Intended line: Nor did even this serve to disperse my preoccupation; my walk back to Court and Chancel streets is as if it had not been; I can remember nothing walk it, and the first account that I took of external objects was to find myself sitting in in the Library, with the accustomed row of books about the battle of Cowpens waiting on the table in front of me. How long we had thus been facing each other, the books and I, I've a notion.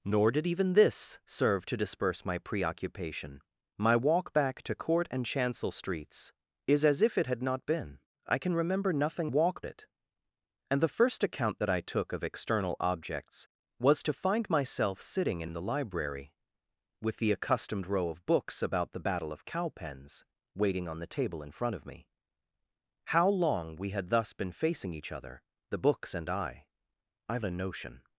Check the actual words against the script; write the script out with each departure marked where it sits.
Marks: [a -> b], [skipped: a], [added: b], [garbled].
Nor did even this serve to disperse my preoccupation; my walk back to Court and Chancel streets is as if it had not been; I can remember nothing walk it, and the first account that I took of external objects was to find myself sitting in in the Library, with the accustomed row of books about the battle of Cowpens waiting on the table in front of me. How long we had thus been facing each other, the books and I, I've a notion.